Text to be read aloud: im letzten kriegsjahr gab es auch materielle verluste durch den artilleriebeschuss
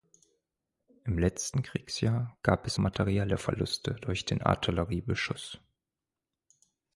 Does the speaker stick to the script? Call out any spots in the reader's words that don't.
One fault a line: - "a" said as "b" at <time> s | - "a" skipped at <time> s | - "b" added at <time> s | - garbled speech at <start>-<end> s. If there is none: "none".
- "auch" skipped at 2.8 s